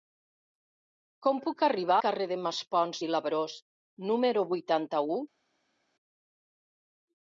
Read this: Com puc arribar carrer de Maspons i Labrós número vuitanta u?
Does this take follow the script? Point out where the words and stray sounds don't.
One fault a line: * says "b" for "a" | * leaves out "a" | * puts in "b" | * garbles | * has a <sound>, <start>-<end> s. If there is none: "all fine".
all fine